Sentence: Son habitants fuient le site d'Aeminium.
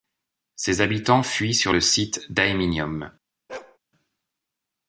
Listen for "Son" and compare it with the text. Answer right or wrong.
wrong